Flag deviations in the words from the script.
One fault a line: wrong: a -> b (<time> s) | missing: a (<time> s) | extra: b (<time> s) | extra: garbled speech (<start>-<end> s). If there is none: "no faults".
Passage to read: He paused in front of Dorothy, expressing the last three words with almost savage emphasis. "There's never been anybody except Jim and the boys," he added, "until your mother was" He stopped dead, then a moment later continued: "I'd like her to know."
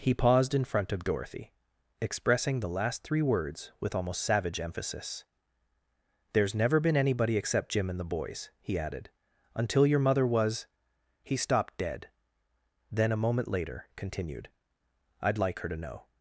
no faults